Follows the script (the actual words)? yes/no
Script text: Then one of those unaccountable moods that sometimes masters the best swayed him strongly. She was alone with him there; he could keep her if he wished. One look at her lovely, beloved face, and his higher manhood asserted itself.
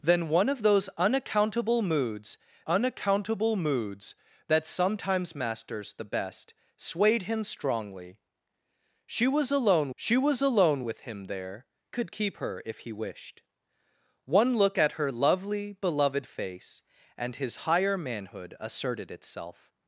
no